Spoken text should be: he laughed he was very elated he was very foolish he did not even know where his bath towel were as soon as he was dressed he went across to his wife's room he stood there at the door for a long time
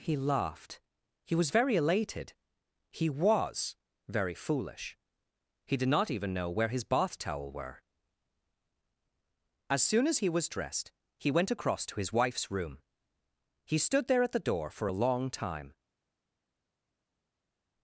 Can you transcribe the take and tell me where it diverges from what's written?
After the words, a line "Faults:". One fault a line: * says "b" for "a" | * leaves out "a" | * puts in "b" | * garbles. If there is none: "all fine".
he laughed he was very elated he was very foolish he did not even know where his bath towel were as soon as he was dressed he went across to his wife's room he stood there at the door for a long time
Faults:
all fine